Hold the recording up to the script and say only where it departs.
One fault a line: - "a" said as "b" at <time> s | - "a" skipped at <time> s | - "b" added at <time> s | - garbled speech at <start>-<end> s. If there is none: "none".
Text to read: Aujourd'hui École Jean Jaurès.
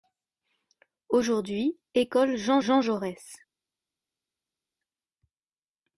- "Jean" added at 2.6 s